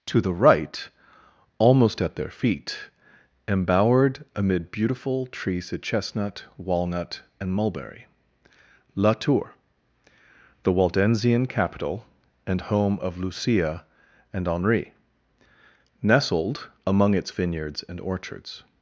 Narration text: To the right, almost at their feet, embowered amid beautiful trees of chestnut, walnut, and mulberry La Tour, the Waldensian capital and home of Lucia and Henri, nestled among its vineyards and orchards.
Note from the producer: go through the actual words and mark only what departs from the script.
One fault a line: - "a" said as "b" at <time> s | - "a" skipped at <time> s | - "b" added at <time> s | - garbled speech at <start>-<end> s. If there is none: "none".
none